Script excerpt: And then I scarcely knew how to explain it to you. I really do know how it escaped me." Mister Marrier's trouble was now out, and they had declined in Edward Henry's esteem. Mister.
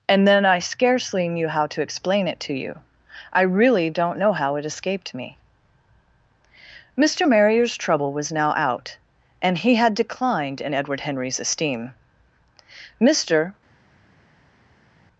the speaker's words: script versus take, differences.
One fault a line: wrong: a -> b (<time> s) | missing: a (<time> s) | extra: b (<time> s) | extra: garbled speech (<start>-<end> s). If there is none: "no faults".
wrong: do -> don't (3.9 s)
wrong: they -> he (9.6 s)